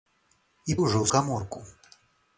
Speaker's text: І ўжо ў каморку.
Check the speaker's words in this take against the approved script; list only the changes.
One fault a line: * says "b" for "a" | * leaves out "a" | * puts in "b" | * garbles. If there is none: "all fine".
all fine